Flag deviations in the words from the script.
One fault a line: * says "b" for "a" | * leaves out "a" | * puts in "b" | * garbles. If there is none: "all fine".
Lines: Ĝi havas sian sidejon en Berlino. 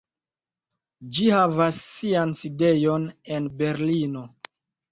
all fine